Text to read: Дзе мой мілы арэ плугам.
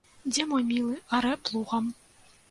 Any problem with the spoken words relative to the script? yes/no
no